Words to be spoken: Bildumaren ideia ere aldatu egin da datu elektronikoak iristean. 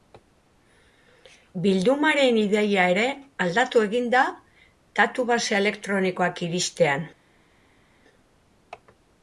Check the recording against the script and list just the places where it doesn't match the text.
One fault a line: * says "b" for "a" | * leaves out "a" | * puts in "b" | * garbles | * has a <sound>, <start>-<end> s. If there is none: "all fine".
* puts in "base"